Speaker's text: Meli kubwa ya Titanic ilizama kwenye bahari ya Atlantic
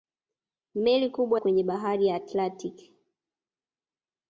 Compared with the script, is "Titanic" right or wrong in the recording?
wrong